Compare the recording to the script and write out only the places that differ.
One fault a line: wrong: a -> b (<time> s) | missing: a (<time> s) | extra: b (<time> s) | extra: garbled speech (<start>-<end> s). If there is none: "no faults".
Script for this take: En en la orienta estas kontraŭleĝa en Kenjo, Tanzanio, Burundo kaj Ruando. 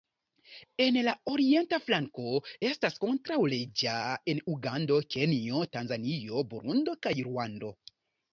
missing: en (0.9 s)
extra: flanko (1.9 s)
extra: Ugando (4.6 s)